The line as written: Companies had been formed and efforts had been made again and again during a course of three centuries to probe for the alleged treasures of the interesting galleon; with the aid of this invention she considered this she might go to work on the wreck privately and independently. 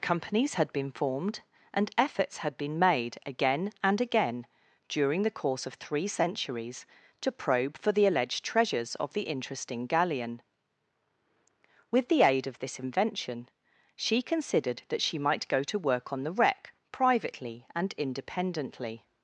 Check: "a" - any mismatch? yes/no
yes